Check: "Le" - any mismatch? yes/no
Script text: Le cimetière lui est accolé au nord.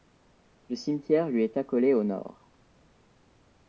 no